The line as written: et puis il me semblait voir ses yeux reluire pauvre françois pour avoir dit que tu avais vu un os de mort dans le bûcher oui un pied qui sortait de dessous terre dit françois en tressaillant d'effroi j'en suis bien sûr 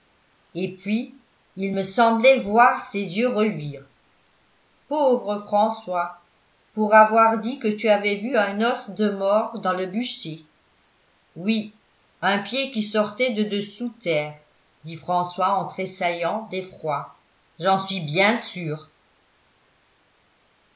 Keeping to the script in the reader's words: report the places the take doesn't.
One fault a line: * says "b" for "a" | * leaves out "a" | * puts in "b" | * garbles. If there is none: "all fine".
all fine